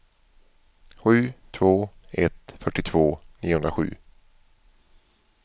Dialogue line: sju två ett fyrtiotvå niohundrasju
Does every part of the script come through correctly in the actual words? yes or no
yes